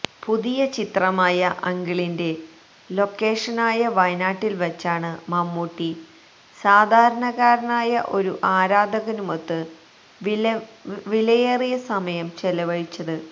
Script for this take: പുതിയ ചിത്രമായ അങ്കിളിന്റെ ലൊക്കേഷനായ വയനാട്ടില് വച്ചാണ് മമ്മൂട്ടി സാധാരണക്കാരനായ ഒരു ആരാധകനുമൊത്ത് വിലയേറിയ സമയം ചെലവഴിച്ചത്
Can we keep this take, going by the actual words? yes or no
yes